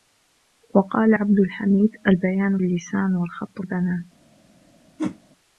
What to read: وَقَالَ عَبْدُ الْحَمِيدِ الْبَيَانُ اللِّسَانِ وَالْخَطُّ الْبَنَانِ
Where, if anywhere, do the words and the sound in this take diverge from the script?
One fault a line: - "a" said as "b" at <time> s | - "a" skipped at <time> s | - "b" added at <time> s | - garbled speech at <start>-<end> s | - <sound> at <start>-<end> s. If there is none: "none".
- whoosh at 5.0-5.2 s